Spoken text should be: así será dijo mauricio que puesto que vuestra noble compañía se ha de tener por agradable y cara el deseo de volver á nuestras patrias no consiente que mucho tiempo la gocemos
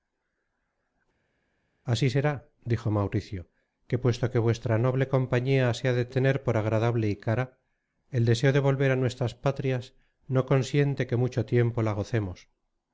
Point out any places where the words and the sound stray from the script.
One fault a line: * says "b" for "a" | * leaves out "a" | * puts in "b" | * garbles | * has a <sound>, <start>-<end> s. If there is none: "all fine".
all fine